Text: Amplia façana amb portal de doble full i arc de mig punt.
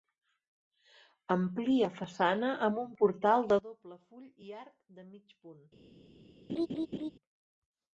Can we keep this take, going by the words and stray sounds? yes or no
no